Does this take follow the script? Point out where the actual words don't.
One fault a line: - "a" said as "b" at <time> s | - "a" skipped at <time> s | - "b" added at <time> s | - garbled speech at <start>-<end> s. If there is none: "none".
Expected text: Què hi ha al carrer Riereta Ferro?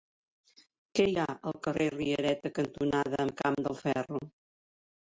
- "cantonada Camp del" added at 2.6 s